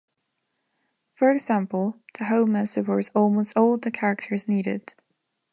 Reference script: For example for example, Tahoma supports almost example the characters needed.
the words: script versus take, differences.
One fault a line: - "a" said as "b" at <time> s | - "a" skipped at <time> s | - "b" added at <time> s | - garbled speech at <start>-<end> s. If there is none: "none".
- "for example" skipped at 2.0 s
- "example" said as "all" at 3.5 s